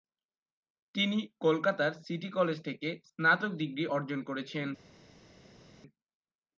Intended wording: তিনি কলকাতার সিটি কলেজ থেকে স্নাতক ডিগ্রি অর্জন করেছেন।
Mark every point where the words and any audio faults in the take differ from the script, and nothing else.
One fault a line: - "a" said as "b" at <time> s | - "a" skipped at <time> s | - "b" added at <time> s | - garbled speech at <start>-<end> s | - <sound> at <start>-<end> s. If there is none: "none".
none